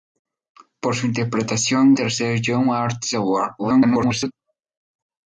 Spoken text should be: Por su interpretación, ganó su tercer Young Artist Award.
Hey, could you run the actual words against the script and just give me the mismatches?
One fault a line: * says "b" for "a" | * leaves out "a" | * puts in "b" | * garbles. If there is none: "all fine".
* leaves out "ganó su"
* garbles